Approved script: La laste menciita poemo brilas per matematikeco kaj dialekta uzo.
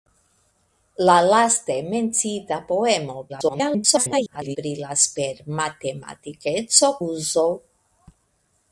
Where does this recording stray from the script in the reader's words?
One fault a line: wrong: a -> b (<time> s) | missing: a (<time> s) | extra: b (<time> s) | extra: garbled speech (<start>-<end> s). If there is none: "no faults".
extra: garbled speech (3.3-4.6 s)
missing: kaj dialekta (6.9 s)